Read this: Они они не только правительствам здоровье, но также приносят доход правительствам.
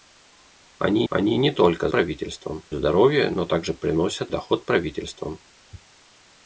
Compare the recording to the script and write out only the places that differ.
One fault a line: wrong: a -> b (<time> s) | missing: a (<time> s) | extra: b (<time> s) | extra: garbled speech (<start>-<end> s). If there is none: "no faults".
no faults